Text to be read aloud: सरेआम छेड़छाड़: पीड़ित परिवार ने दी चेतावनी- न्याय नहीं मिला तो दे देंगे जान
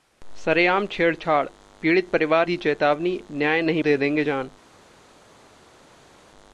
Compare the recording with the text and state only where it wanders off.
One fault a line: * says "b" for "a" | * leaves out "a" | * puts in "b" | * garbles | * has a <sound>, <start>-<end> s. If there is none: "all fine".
* leaves out "ने"
* leaves out "मिला तो"